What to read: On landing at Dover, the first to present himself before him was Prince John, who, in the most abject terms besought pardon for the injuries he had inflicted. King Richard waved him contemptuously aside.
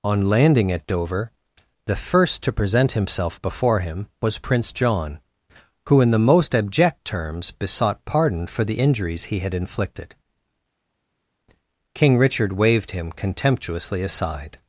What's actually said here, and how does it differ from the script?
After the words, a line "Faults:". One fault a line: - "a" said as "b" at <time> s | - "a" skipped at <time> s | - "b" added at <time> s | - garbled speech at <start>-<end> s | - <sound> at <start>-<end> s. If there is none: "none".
On landing at Dover, the first to present himself before him was Prince John, who, in the most abject terms besought pardon for the injuries he had inflicted. King Richard waved him contemptuously aside.
Faults:
none